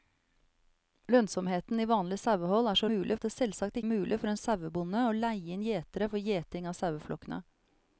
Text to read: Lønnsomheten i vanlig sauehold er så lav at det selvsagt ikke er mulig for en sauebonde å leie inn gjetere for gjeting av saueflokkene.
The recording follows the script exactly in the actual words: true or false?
false